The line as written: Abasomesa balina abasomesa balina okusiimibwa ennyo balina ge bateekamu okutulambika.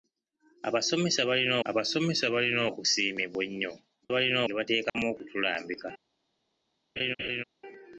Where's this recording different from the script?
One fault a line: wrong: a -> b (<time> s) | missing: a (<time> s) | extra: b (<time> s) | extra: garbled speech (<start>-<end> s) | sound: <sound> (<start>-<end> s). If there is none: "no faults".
sound: dropout (4.9-4.9 s)
sound: laugh (7.0-7.4 s)